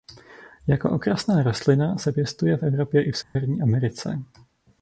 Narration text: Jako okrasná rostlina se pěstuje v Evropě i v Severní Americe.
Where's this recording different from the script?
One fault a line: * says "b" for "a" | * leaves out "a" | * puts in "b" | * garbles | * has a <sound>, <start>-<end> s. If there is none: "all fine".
* has a dropout, 3.2-3.4 s